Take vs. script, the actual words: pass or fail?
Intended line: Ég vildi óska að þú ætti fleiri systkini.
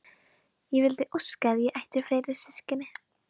fail